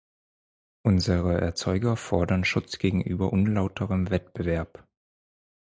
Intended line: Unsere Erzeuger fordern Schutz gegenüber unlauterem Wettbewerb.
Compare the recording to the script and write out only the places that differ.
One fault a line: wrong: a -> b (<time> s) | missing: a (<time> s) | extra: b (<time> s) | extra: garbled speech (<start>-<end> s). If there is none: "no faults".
no faults